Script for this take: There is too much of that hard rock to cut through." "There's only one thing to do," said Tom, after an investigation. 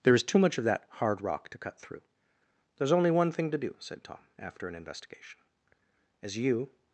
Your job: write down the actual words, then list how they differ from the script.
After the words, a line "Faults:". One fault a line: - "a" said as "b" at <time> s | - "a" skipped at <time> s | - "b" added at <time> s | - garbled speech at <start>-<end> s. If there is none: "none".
There is too much of that hard rock to cut through." "There's only one thing to do," said Tom, after an investigation. "As you
Faults:
- "As you" added at 6.2 s